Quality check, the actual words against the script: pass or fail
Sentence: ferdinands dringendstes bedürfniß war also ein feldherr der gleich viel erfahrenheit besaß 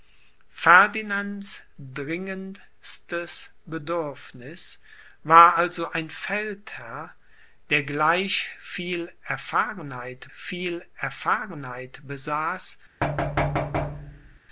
fail